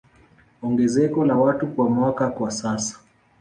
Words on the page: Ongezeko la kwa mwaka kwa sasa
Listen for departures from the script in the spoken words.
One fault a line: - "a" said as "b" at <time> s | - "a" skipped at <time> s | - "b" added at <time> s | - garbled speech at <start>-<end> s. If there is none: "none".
- "watu" added at 1.3 s